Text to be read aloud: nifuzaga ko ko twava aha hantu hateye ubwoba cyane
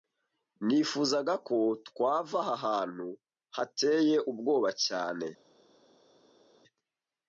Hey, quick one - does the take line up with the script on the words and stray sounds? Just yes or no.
no